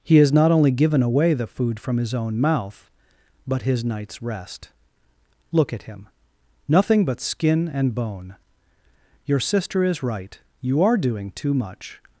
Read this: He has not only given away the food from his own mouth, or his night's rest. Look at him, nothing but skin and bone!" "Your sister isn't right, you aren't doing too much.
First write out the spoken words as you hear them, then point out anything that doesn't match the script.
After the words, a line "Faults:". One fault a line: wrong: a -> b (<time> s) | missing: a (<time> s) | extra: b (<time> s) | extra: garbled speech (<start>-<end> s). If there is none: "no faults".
He has not only given away the food from his own mouth, but his night's rest. Look at him, nothing but skin and bone!" "Your sister is right, you are doing too much.
Faults:
wrong: or -> but (3.5 s)
wrong: isn't -> is (9.8 s)
wrong: aren't -> are (10.8 s)